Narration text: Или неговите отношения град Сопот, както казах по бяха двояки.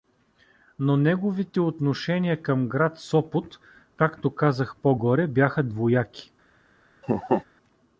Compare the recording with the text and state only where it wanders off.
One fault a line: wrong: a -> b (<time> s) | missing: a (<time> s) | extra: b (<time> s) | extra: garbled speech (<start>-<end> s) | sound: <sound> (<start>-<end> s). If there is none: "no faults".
wrong: Или -> Но (0.8 s)
extra: към (2.4 s)
extra: горе (4.9 s)
sound: laugh (7.0-7.4 s)